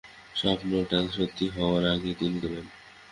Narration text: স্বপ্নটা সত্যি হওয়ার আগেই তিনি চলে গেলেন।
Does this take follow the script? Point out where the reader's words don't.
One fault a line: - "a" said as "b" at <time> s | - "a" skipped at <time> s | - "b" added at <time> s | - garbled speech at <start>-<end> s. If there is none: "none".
- "চলে" skipped at 2.4 s